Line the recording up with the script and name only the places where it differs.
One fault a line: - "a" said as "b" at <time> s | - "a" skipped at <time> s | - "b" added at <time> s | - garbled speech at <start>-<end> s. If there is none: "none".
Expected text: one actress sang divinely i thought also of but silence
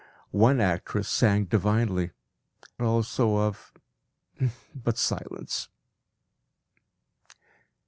- "i thought" skipped at 2.1 s